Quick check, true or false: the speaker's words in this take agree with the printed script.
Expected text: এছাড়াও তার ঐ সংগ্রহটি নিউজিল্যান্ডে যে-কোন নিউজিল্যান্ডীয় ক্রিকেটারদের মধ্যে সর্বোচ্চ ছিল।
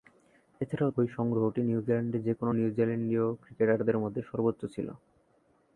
false